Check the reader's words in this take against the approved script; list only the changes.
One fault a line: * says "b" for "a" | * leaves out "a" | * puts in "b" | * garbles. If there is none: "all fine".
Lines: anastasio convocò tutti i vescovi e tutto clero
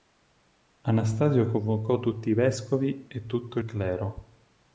all fine